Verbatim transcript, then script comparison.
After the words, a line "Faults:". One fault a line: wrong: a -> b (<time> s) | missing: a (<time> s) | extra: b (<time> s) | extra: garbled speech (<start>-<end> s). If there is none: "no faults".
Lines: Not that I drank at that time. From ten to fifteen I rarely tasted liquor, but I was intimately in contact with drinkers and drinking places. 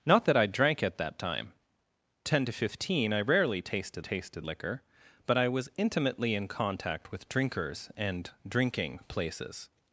Not that I drank at that time. Ten to fifteen I rarely tasted tasted liquor, but I was intimately in contact with drinkers and drinking places.
Faults:
missing: From (1.5 s)
extra: tasted (4.0 s)